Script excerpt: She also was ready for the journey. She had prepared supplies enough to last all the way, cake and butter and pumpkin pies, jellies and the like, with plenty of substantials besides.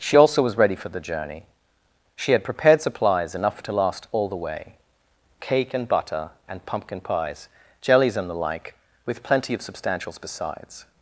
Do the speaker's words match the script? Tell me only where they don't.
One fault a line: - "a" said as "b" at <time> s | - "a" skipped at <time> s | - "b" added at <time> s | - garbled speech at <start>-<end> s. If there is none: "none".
none